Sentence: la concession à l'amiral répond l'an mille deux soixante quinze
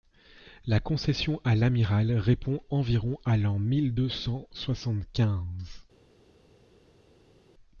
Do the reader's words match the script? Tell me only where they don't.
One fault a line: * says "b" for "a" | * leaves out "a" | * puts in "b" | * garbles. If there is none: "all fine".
* puts in "environ à"
* puts in "cent"